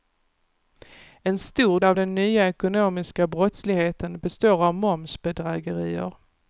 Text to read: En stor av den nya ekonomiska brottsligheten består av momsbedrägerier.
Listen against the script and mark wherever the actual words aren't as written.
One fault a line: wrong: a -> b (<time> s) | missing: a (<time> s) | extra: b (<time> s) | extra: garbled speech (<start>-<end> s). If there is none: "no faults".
no faults